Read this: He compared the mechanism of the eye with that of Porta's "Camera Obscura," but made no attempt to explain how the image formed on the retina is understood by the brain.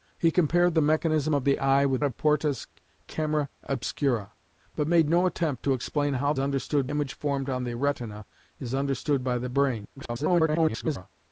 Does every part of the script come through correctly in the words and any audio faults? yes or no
no